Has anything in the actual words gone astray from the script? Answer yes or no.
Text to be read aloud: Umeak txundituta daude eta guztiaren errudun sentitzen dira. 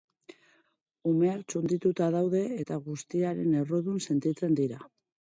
no